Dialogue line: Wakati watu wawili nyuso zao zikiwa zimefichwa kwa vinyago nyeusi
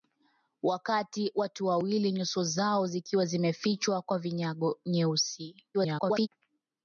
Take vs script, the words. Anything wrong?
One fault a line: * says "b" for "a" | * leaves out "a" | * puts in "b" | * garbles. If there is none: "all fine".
* garbles